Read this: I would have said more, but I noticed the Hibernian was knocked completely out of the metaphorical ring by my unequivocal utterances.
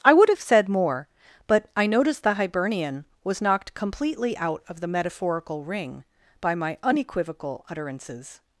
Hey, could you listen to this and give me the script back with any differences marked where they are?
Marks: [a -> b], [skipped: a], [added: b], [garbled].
I would have said more, but I noticed the Hibernian was knocked completely out of the metaphorical ring by my unequivocal utterances.